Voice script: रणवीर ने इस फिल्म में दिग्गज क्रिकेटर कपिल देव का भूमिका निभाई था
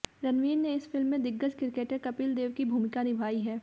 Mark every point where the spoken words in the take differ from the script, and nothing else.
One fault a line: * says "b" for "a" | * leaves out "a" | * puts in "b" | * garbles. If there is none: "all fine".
* says "की" for "का"
* says "है" for "था"